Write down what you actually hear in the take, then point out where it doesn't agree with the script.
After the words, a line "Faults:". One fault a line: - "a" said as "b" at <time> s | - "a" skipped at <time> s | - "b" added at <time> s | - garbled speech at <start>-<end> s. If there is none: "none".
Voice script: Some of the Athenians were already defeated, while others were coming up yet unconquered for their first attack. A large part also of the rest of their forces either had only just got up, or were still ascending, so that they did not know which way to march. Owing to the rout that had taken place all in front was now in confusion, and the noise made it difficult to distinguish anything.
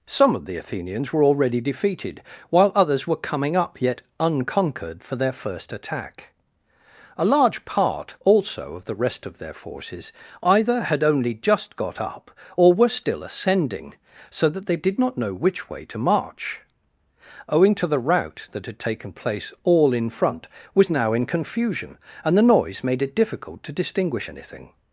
Some of the Athenians were already defeated, while others were coming up yet unconquered for their first attack. A large part also of the rest of their forces either had only just got up, or were still ascending, so that they did not know which way to march. Owing to the rout that had taken place all in front was now in confusion, and the noise made it difficult to distinguish anything.
Faults:
none